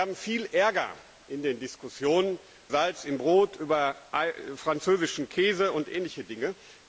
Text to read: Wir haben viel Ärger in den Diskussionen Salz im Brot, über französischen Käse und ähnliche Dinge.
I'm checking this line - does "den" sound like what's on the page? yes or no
yes